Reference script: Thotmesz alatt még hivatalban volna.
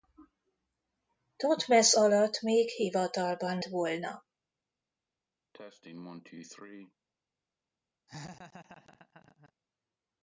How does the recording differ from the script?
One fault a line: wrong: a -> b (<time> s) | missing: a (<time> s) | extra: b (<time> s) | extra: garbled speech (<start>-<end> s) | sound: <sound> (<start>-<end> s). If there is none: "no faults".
sound: cough (5.5-6.9 s)
sound: laugh (8.1-9.5 s)